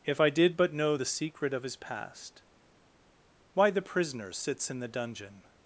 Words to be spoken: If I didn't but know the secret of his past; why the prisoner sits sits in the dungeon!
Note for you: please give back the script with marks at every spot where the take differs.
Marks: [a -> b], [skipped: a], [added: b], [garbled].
If I [didn't -> did] but know the secret of his past; why the prisoner sits [skipped: sits] in the dungeon!